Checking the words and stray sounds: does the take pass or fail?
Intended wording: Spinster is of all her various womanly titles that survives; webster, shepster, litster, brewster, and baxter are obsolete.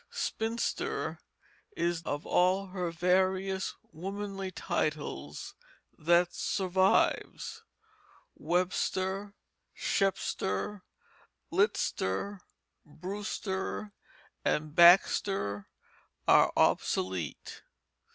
pass